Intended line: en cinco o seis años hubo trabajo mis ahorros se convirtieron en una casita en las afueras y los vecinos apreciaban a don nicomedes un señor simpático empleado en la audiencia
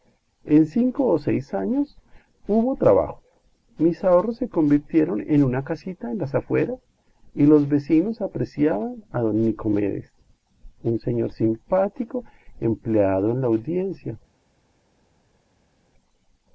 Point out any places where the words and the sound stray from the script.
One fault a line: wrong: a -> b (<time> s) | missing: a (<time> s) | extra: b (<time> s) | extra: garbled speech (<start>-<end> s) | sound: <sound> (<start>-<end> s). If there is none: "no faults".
no faults